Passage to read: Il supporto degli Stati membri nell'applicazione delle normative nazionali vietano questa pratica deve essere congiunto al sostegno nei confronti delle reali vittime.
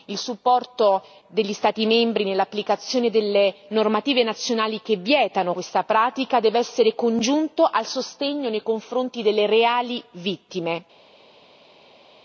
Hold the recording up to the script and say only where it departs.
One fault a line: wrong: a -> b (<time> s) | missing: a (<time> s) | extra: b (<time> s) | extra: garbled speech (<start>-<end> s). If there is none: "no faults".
extra: che (4.8 s)